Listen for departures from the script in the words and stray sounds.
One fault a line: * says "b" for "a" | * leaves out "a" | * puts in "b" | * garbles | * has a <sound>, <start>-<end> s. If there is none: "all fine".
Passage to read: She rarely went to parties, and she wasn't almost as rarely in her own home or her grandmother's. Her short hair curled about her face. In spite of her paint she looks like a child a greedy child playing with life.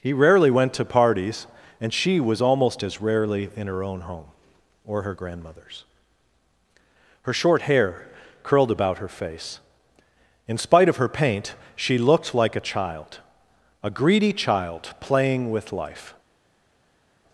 * says "He" for "She"
* says "was" for "wasn't"
* says "looked" for "looks"